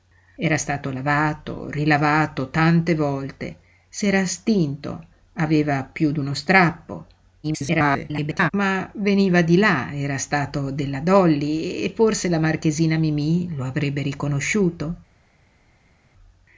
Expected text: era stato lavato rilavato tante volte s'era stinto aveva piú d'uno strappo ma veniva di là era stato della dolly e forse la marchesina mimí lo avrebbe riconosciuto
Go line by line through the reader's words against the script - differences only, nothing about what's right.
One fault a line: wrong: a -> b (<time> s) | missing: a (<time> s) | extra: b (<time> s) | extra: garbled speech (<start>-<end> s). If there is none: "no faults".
extra: garbled speech (7.4-8.5 s)